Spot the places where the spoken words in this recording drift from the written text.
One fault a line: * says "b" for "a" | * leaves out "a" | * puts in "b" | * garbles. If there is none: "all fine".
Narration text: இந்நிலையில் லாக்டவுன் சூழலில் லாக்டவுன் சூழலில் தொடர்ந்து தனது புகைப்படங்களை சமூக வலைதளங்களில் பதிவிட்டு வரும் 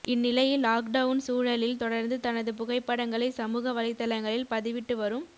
* leaves out "லாக்டவுன் சூழலில்"